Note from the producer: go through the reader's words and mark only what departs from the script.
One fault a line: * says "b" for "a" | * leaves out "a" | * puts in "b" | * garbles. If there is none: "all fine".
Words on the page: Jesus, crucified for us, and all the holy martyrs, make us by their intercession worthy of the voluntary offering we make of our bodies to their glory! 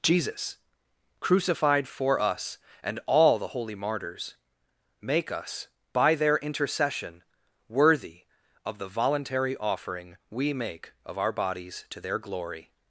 all fine